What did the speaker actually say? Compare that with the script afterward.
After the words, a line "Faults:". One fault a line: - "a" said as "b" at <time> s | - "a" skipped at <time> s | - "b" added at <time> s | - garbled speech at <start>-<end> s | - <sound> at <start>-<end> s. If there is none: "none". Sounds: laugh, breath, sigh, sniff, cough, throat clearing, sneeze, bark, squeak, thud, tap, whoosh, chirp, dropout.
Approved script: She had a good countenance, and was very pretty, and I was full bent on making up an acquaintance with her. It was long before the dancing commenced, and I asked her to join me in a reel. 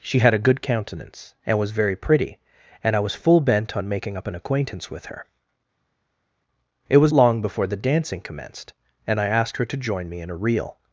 She had a good countenance, and was very pretty, and I was full bent on making up an acquaintance with her. It was long before the dancing commenced, and I asked her to join me in a reel.
Faults:
none